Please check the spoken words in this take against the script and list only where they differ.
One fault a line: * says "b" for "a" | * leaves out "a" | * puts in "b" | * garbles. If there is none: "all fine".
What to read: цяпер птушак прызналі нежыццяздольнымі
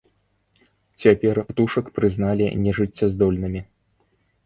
all fine